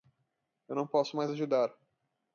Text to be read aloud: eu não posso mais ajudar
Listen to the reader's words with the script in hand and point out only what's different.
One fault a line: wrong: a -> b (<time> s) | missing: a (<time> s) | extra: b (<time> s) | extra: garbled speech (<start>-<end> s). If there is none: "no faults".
no faults